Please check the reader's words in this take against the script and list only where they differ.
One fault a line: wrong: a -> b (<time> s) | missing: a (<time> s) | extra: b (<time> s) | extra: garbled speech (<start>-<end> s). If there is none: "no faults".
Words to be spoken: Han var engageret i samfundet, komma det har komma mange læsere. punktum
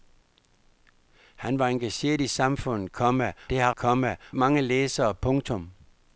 no faults